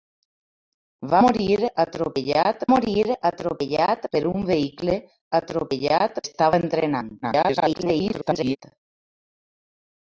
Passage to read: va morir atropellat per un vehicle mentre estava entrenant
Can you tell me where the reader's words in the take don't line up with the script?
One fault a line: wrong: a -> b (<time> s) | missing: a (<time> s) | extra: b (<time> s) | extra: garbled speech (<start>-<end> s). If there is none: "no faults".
extra: morir atropellat (2.7 s)
wrong: mentre -> atropellat (5.4 s)
extra: garbled speech (7.2-8.6 s)